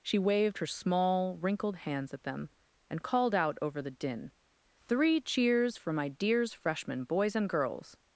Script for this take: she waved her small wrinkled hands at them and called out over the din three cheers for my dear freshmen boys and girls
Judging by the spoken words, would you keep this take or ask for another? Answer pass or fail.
fail